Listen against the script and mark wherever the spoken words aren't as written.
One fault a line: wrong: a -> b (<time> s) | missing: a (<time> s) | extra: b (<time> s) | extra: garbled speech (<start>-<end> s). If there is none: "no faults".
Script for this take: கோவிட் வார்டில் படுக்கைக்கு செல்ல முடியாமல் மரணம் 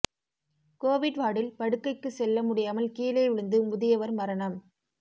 extra: கீழே விழுந்து முதியவர் (2.9 s)